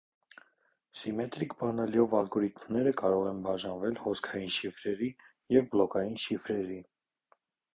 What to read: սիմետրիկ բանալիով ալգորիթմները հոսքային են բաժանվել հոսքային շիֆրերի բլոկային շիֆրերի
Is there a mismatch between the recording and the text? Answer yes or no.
yes